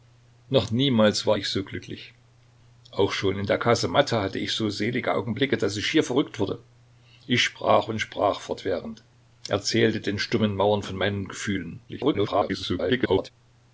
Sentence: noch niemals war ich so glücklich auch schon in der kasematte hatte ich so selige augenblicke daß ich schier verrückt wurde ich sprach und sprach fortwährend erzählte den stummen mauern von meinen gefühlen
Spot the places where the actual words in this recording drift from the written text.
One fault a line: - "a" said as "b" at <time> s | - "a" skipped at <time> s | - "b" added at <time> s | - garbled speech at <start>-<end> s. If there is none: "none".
- garbled speech at 11.9-13.3 s